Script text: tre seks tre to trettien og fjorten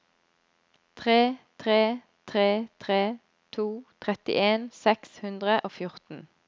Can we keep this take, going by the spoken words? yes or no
no